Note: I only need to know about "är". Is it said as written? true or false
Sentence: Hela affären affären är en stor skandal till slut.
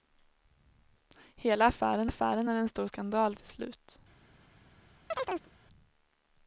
true